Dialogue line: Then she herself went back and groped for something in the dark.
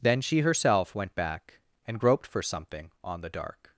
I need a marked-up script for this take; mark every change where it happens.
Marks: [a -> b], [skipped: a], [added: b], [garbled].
Then she herself went back and groped for something [in -> on] the dark.